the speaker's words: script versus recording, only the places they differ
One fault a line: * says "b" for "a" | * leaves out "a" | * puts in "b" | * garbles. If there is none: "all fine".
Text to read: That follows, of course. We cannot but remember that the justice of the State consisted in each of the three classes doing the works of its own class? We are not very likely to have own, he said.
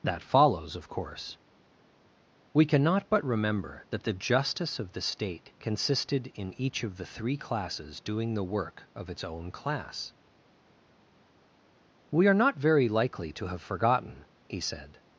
* says "work" for "works"
* says "forgotten" for "own"